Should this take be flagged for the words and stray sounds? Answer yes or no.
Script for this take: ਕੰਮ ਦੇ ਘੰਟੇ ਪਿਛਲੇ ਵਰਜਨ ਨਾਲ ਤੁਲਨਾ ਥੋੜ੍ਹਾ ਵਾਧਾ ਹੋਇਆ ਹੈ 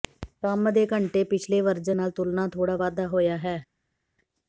no